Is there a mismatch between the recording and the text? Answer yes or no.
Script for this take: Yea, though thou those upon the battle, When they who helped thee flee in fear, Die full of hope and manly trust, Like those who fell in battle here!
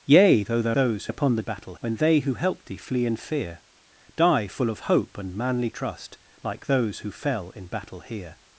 no